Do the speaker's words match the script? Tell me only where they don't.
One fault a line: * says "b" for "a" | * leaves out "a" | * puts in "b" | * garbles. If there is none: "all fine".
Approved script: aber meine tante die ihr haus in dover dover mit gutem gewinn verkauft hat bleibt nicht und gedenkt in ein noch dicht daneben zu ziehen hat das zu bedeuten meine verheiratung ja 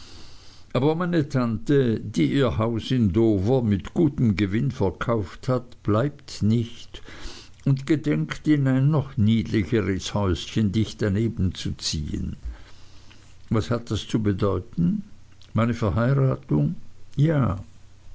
* leaves out "dover"
* puts in "niedlicheres häuschen"
* puts in "was"